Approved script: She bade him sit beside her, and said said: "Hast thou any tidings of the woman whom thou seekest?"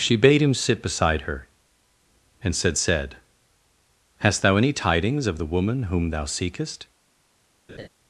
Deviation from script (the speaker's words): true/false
false